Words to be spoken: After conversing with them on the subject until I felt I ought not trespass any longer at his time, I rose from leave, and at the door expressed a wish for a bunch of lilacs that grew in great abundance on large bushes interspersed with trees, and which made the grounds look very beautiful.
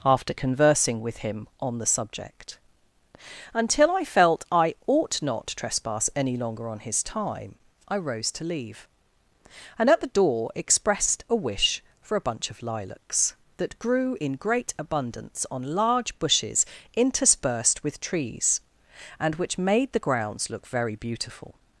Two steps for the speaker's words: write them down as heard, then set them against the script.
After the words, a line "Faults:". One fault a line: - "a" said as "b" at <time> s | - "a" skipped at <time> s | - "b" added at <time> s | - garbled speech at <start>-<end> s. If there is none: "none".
After conversing with him on the subject until I felt I ought not trespass any longer on his time, I rose to leave, and at the door expressed a wish for a bunch of lilacs that grew in great abundance on large bushes interspersed with trees, and which made the grounds look very beautiful.
Faults:
- "them" said as "him" at 1.2 s
- "at" said as "on" at 6.7 s
- "from" said as "to" at 8.3 s